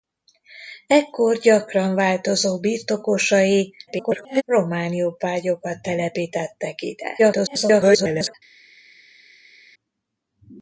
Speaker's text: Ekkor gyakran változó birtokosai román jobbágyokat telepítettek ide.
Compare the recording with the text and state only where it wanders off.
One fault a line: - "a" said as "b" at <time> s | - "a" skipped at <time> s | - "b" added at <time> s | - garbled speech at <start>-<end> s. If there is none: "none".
- garbled speech at 3.9-4.4 s
- garbled speech at 7.2-8.3 s